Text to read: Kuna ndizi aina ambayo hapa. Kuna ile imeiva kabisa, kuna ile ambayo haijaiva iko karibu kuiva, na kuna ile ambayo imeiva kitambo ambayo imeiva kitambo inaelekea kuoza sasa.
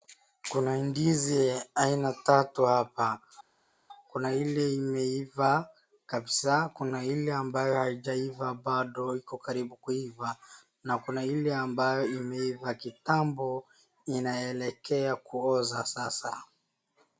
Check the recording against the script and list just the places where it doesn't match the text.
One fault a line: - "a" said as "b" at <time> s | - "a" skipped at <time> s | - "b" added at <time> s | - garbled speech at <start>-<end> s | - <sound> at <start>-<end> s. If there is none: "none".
- "ambayo" said as "tatu" at 2.1 s
- "bado" added at 8.5 s
- "ambayo imeiva kitambo" skipped at 13.7 s